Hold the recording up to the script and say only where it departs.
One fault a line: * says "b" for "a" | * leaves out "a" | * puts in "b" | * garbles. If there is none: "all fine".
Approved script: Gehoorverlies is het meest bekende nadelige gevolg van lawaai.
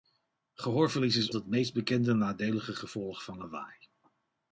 all fine